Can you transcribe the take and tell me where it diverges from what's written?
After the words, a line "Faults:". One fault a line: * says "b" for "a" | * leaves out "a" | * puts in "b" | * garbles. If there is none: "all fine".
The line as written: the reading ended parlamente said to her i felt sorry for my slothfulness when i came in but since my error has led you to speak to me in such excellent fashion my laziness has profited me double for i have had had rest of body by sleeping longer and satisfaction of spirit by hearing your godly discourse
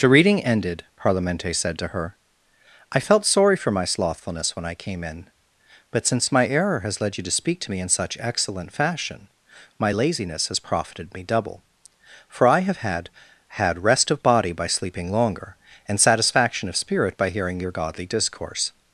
the reading ended parlamente said to her i felt sorry for my slothfulness when i came in but since my error has led you to speak to me in such excellent fashion my laziness has profited me double for i have had had rest of body by sleeping longer and satisfaction of spirit by hearing your godly discourse
Faults:
all fine